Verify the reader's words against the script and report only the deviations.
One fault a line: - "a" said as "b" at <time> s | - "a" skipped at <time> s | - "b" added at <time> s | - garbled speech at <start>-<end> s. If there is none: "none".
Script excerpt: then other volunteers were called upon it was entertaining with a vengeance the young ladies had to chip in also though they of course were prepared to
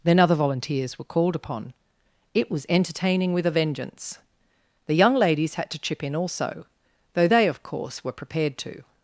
none